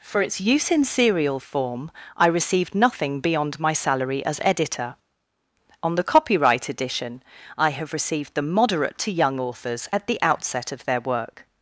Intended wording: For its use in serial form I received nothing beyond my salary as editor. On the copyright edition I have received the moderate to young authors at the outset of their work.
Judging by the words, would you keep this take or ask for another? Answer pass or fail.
pass